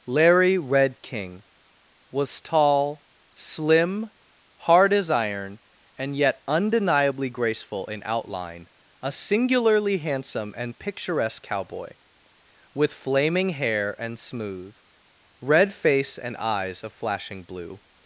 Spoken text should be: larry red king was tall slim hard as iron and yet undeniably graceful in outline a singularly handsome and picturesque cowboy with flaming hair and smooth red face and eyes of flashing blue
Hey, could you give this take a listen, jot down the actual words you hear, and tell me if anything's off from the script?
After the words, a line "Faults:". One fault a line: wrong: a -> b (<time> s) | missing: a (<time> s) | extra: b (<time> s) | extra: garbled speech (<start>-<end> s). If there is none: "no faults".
larry red king was tall slim hard as iron and yet undeniably graceful in outline a singularly handsome and picturesque cowboy with flaming hair and smooth red face and eyes of flashing blue
Faults:
no faults